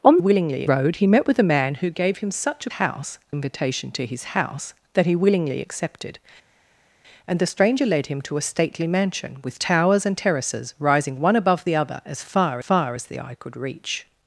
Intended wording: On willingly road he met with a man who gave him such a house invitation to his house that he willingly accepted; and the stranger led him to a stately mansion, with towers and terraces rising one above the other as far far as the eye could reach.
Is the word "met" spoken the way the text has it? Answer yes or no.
yes